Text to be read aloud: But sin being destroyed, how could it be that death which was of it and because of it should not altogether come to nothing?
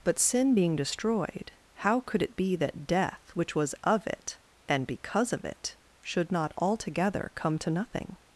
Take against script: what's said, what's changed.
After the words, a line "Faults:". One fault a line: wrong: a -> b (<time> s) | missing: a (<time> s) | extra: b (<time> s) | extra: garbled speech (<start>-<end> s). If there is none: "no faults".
But sin being destroyed, how could it be that death which was of it and because of it should not altogether come to nothing?
Faults:
no faults